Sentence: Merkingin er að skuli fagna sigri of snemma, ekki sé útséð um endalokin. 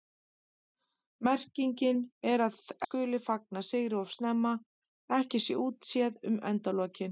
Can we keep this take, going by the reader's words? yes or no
yes